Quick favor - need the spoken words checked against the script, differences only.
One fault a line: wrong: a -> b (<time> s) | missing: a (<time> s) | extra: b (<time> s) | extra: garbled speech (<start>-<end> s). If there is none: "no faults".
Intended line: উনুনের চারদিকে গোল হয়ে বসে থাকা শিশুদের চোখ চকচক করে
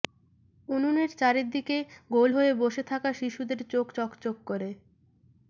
no faults